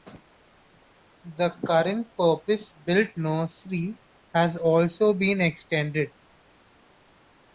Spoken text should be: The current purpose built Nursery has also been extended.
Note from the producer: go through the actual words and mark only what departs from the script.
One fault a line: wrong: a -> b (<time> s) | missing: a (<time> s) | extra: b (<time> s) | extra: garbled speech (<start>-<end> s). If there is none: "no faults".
no faults